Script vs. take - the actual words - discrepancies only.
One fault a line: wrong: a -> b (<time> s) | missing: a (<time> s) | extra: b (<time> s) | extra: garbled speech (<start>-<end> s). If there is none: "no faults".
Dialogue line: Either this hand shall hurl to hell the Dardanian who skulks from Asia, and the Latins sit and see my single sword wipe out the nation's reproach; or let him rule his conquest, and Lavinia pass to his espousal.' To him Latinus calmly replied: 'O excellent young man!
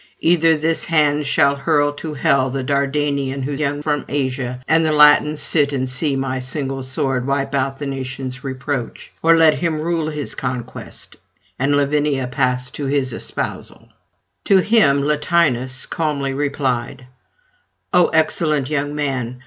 wrong: skulks -> young (3.6 s)